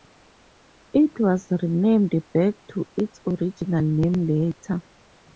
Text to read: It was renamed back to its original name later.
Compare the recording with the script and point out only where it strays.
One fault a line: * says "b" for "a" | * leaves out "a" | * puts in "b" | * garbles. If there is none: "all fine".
all fine